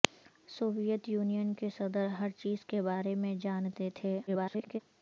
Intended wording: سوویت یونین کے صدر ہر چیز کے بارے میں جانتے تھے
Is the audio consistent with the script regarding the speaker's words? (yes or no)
no